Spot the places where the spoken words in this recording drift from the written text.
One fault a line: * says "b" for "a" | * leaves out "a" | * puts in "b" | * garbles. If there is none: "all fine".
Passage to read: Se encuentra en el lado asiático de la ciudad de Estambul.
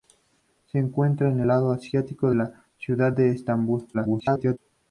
* leaves out "el"
* leaves out "de"
* garbles